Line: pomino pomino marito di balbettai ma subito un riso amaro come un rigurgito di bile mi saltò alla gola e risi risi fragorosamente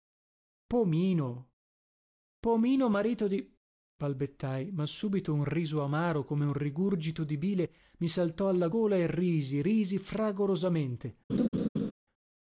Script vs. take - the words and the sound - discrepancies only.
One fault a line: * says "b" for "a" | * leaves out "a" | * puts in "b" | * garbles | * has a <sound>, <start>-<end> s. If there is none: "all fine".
* has a laugh, 11.3-11.9 s